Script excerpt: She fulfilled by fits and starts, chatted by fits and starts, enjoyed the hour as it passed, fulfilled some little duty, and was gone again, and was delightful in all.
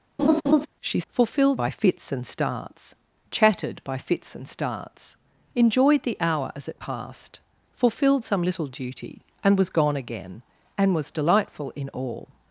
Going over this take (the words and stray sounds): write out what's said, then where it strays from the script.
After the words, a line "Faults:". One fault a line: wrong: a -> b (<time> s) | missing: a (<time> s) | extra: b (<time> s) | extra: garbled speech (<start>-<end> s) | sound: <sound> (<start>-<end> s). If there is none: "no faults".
She fulfilled by fits and starts, chatted by fits and starts, enjoyed the hour as it passed, fulfilled some little duty, and was gone again, and was delightful in all.
Faults:
sound: laugh (0.2-0.7 s)